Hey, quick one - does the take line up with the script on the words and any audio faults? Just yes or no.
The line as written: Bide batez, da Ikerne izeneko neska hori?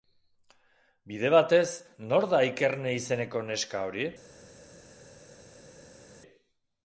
no